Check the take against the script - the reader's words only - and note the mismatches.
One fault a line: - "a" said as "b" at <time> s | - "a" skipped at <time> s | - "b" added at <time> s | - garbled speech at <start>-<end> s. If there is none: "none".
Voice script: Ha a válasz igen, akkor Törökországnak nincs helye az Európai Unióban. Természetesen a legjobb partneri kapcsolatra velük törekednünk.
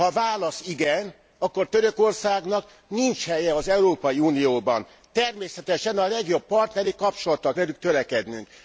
none